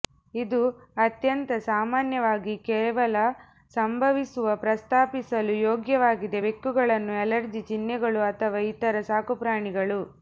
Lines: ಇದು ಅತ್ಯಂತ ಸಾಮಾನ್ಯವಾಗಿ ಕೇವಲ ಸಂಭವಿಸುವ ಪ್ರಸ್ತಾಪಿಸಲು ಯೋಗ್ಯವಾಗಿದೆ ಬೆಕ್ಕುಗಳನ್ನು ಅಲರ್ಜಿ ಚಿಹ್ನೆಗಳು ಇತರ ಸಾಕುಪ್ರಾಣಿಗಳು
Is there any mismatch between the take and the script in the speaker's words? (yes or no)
yes